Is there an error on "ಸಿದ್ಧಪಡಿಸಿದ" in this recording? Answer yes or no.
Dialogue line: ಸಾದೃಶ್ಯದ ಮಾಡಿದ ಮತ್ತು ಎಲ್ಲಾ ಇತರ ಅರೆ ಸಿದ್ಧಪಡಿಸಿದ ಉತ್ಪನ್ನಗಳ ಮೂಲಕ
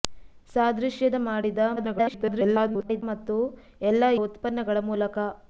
yes